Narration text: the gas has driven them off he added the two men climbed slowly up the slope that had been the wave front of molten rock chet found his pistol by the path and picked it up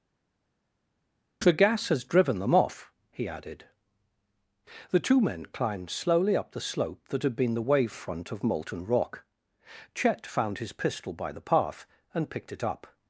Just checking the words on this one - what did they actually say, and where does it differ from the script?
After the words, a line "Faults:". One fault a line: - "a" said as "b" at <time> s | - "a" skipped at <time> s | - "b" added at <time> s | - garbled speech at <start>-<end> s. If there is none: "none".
the gas has driven them off he added the two men climbed slowly up the slope that had been the wave front of molten rock chet found his pistol by the path and picked it up
Faults:
none